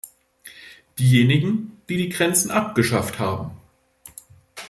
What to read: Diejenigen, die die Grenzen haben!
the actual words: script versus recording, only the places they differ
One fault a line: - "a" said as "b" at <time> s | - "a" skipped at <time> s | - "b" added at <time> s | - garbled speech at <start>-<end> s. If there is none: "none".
- "abgeschafft" added at 2.5 s